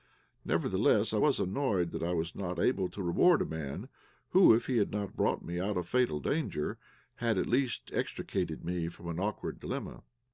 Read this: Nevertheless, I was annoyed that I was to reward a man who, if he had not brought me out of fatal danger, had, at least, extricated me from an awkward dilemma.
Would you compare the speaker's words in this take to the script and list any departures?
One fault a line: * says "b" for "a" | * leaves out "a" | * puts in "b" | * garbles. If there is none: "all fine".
* puts in "not able"